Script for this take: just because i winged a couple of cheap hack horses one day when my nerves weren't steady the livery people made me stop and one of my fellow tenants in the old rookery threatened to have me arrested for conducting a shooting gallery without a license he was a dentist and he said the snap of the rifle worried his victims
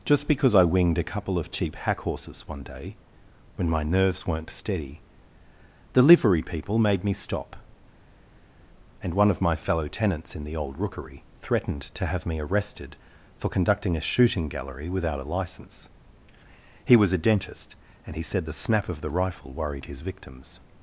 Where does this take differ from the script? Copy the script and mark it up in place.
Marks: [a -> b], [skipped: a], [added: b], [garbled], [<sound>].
just because i winged a couple of cheap hack horses one day when my nerves weren't steady the livery people made me stop and one of my fellow tenants in the old rookery threatened to have me arrested for conducting a shooting gallery without a license he was a dentist and he said the snap of the rifle worried his victims